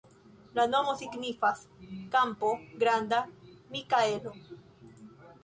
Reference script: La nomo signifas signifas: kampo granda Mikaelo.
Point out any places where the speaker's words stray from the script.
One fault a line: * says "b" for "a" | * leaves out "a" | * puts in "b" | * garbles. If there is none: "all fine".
* leaves out "signifas"